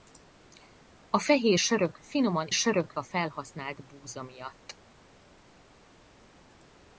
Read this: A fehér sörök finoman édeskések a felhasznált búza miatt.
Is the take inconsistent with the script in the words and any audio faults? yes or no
yes